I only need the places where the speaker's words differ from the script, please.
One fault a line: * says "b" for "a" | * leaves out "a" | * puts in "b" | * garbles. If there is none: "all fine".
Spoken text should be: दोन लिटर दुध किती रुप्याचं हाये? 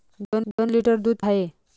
* puts in "दोन"
* leaves out "किती रुप्याचं"